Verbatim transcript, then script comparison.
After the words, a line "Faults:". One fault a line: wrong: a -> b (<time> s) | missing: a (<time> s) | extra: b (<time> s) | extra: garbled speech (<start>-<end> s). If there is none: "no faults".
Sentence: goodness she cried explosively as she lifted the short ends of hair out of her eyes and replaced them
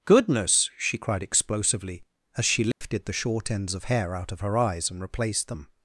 goodness she cried explosively as she lifted the short ends of hair out of her eyes and replaced them
Faults:
no faults